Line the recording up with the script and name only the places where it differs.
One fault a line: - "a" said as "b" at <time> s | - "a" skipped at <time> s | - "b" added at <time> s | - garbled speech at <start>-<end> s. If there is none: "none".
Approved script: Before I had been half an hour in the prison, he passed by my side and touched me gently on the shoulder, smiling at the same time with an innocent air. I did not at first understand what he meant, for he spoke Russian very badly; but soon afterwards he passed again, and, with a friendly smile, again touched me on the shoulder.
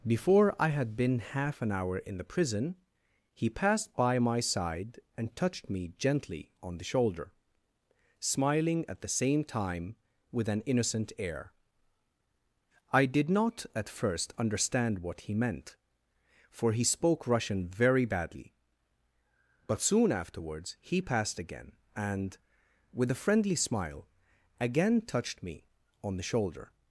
none